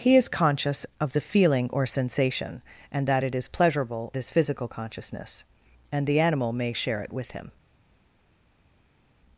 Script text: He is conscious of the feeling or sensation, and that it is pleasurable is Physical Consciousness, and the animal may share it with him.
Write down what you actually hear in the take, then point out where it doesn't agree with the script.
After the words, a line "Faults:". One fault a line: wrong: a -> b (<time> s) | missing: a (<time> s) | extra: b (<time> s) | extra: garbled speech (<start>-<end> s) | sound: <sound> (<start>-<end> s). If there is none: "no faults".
He is conscious of the feeling or sensation, and that it is pleasurable is Physical Consciousness, and the animal may share it with him.
Faults:
no faults